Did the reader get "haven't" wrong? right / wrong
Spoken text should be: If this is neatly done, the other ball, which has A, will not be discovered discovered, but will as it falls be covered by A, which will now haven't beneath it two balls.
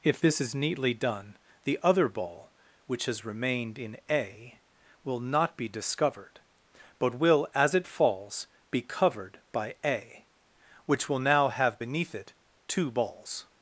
wrong